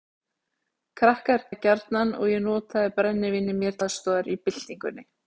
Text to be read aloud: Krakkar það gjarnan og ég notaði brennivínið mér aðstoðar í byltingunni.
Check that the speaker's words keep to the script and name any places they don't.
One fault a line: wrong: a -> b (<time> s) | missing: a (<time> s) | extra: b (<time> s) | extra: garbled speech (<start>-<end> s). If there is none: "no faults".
no faults